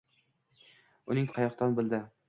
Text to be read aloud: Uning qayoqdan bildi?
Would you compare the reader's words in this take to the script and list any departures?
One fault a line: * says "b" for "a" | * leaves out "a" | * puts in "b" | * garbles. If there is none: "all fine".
all fine